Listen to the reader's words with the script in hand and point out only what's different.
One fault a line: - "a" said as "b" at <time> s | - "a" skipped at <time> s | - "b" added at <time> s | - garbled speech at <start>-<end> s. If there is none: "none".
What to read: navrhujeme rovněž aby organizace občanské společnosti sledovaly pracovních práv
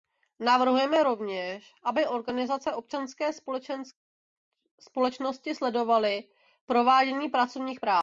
- "provádění" added at 6.6 s